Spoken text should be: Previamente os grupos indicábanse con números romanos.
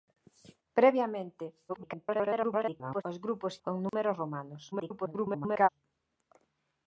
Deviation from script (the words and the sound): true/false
true